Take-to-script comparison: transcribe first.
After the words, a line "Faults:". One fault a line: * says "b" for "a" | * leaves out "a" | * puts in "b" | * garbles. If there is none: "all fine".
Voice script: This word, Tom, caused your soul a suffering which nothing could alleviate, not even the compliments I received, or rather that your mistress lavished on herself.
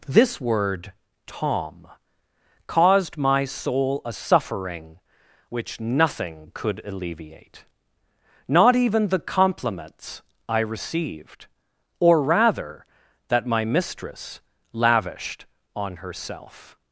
This word, Tom, caused my soul a suffering which nothing could alleviate, not even the compliments I received, or rather that my mistress lavished on herself.
Faults:
* says "my" for "your"
* says "my" for "your"